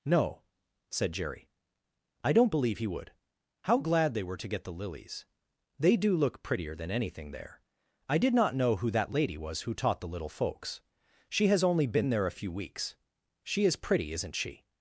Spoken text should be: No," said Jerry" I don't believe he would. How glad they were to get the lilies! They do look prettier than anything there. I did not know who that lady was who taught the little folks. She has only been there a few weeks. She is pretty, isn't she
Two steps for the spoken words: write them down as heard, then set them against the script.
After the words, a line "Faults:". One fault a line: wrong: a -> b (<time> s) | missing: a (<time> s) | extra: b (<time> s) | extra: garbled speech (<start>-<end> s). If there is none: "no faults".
No," said Jerry" I don't believe he would. How glad they were to get the lilies! They do look prettier than anything there. I did not know who that lady was who taught the little folks. She has only been there a few weeks. She is pretty, isn't she
Faults:
no faults